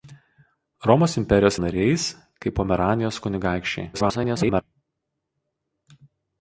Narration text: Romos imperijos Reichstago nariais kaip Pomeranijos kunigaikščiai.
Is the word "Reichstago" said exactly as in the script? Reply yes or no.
no